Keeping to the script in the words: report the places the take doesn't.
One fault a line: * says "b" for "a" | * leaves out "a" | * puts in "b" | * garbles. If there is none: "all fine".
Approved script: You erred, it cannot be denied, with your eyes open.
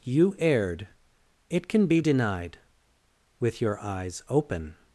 * says "can" for "cannot"